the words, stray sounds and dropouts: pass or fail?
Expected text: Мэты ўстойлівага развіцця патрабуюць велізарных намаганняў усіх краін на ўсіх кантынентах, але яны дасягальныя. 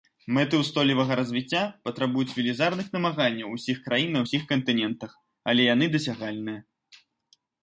pass